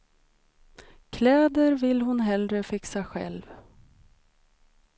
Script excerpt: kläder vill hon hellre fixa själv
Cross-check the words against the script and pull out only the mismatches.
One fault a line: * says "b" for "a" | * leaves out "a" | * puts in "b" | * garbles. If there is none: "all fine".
all fine